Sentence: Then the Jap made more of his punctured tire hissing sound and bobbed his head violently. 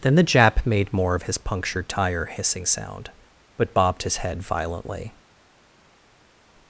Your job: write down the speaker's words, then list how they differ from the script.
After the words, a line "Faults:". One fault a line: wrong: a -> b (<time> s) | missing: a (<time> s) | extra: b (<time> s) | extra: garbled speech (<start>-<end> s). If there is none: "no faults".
Then the Jap made more of his punctured tire hissing sound but bobbed his head violently.
Faults:
wrong: and -> but (3.6 s)